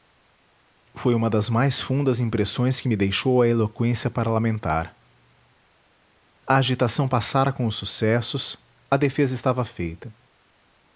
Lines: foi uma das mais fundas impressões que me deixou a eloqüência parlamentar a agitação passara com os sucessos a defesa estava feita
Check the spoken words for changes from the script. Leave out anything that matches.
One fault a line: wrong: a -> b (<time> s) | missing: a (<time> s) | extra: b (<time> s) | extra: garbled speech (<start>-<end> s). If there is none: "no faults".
no faults